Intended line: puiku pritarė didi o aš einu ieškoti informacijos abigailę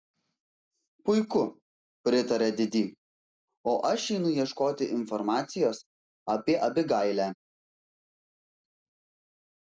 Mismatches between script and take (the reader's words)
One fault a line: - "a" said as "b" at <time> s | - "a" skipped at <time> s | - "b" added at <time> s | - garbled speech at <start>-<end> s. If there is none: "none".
- "apie" added at 6.4 s